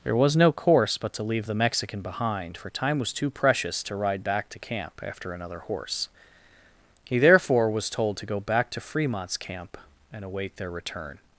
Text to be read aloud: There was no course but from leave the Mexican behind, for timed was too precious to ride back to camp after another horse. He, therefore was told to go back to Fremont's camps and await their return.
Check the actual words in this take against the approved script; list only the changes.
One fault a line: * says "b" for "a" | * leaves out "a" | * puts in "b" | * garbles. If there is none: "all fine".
* says "to" for "from"
* says "time" for "timed"
* says "camp" for "camps"